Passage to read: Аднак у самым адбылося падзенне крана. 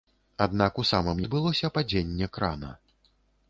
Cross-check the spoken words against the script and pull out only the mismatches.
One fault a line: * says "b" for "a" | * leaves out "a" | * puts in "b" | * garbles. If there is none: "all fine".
all fine